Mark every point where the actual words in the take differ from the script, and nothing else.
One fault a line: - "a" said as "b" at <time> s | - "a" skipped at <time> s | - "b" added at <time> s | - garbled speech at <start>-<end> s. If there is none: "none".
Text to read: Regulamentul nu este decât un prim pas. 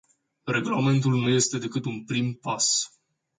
none